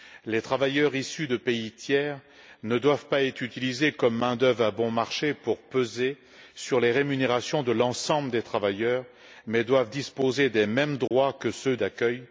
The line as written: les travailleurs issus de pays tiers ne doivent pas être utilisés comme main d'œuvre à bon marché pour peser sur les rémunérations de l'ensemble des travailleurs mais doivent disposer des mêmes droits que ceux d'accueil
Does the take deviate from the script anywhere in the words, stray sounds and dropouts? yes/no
yes